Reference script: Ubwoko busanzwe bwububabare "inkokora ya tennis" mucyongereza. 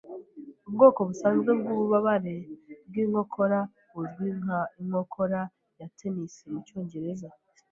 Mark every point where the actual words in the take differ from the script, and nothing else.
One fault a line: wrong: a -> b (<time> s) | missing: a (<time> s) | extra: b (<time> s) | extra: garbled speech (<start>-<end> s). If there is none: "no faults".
extra: bwinkokora buzwi nka (2.9 s)